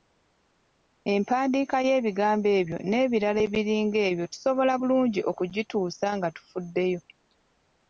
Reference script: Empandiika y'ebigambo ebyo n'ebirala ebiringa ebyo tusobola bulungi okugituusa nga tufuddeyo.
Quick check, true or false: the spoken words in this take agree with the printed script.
true